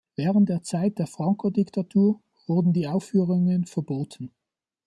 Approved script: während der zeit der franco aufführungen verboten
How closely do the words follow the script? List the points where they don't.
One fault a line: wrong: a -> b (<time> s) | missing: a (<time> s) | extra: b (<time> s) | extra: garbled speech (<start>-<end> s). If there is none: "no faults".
extra: diktatur wurden die (1.5 s)